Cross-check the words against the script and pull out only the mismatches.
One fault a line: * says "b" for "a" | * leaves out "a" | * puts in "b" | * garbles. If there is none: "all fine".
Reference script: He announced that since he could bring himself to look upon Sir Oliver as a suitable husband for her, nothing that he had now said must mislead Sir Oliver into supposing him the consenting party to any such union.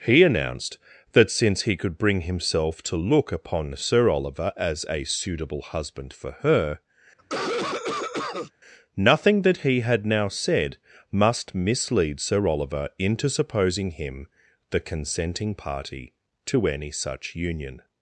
all fine